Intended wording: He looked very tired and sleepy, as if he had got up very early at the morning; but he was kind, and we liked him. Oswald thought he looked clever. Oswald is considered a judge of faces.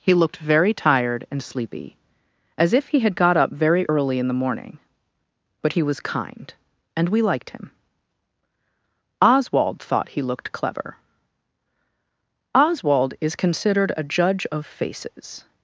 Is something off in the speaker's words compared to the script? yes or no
yes